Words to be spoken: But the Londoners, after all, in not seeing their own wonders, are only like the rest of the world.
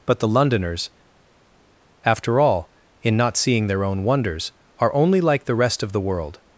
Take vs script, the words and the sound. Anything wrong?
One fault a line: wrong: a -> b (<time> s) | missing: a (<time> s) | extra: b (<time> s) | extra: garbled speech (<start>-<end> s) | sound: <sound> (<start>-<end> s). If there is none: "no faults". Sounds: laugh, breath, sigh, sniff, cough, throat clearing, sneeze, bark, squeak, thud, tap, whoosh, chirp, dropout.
no faults